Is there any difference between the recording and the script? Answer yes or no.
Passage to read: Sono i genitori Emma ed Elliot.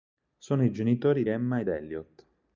no